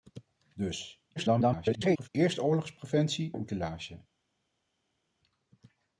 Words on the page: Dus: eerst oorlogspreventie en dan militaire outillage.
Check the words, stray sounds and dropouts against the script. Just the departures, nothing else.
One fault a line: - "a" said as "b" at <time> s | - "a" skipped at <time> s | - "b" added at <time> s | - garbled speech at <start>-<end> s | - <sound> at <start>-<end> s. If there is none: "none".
- garbled speech at 1.2-2.1 s
- "en dan militaire" skipped at 3.3 s